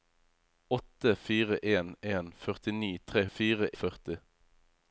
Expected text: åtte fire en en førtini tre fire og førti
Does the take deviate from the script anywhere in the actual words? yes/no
no